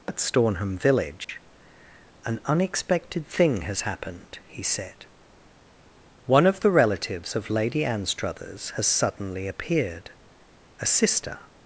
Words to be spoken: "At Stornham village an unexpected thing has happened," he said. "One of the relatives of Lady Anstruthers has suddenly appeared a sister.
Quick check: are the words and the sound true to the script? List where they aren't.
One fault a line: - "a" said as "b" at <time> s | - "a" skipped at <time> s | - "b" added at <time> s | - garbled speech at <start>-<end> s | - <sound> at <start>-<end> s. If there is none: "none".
- dropout at 1.2-1.3 s